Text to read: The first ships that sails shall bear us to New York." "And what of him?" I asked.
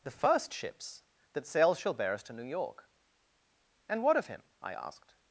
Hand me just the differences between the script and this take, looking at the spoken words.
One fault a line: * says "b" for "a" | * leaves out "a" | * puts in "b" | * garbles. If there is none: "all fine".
all fine